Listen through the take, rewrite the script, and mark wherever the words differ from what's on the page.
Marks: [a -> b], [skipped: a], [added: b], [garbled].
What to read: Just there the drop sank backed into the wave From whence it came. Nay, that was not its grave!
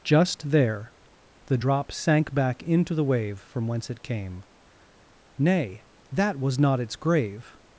Just there the drop sank [backed -> back] into the wave From whence it came. Nay, that was not its grave!